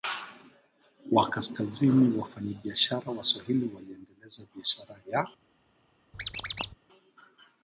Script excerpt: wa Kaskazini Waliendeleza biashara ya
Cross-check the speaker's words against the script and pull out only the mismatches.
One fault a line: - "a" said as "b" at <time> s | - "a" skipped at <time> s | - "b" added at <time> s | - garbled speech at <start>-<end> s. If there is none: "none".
- "Wafanyabiashara Waswahili" added at 2.2 s